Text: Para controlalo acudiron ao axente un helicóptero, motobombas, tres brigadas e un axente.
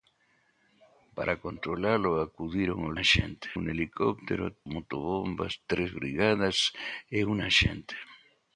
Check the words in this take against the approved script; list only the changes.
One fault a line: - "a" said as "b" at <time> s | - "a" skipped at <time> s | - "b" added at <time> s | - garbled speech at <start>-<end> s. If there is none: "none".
none